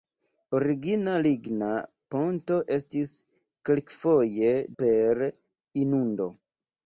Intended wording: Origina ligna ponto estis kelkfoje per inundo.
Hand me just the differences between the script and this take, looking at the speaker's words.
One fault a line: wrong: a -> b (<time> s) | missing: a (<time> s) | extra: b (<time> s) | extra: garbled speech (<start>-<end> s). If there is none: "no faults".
no faults